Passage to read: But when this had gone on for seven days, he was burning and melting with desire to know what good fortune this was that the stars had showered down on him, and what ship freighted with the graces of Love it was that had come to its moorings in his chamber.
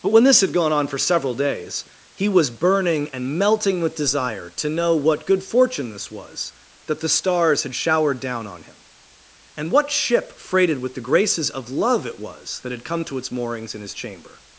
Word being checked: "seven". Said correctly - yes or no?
no